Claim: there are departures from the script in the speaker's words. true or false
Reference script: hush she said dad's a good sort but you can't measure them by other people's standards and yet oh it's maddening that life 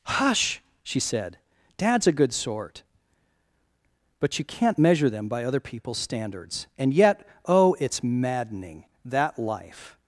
false